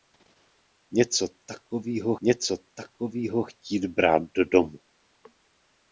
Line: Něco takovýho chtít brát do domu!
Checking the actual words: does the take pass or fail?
fail